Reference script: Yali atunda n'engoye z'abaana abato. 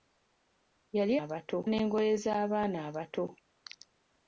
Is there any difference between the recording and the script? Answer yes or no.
yes